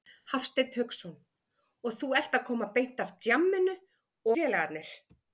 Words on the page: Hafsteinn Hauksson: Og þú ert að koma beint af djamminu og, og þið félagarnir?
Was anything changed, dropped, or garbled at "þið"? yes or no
yes